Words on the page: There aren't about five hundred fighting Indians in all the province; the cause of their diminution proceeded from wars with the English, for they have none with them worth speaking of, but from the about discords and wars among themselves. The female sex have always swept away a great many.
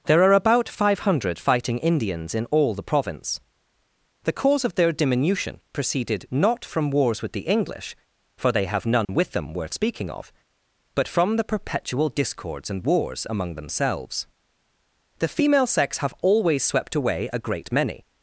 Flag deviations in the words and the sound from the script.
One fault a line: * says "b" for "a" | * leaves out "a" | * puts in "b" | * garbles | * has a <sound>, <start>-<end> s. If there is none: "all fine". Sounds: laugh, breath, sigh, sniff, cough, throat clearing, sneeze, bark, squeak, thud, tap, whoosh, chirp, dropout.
* says "are" for "aren't"
* puts in "not"
* has a dropout, 9.0-9.1 s
* says "perpetual" for "about"